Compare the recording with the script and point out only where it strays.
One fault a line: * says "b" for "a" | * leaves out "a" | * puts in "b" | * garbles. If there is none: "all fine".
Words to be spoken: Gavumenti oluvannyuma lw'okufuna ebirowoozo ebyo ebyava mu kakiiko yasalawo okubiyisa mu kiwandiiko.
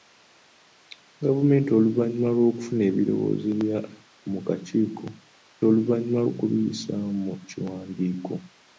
* leaves out "ebyo ebyava"
* says "oluvannyuma" for "yasalawo"